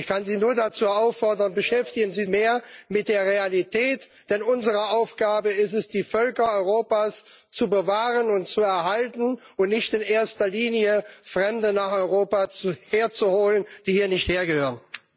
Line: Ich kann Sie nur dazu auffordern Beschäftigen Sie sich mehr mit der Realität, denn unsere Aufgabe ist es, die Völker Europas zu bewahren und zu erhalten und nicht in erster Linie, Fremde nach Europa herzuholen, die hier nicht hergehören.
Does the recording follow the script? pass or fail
fail